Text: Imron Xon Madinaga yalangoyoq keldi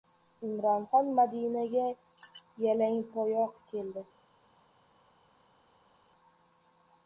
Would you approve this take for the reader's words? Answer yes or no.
yes